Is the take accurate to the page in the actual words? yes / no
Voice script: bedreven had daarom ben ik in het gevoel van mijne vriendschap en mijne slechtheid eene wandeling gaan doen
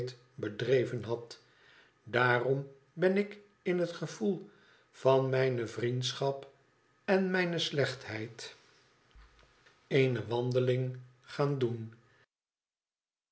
yes